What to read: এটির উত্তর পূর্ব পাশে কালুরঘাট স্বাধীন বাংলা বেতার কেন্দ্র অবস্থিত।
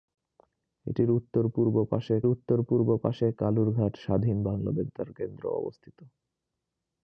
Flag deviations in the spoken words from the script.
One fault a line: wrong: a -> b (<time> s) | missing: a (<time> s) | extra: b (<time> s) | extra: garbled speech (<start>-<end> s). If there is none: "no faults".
extra: উত্তর পূর্ব পাশে (2.3 s)